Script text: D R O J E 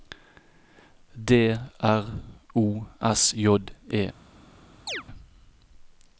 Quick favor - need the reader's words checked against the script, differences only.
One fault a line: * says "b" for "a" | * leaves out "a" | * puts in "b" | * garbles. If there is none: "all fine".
* puts in "S"